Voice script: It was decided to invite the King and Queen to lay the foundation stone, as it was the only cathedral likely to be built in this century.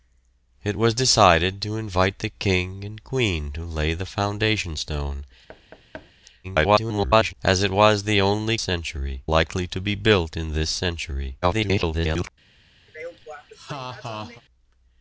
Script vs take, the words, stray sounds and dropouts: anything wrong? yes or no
yes